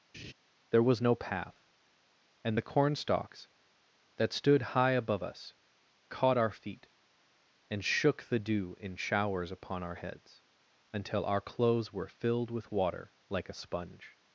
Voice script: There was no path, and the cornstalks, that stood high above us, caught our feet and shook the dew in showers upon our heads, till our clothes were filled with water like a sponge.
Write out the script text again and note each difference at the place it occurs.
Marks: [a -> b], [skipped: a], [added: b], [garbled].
There was no path, and the cornstalks, that stood high above us, caught our feet and shook the dew in showers upon our heads, [till -> until] our clothes were filled with water like a sponge.